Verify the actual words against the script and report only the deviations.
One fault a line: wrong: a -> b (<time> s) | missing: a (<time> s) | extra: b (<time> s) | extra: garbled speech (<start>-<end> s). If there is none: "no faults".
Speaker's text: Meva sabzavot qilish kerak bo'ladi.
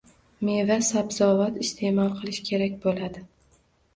extra: iste'mol (1.6 s)